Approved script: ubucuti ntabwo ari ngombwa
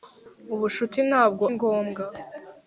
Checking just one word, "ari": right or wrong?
wrong